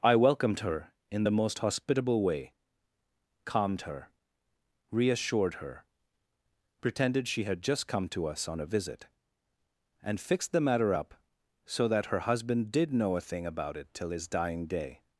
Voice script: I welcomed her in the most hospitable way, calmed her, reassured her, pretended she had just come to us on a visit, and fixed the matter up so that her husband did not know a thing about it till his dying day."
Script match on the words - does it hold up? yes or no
no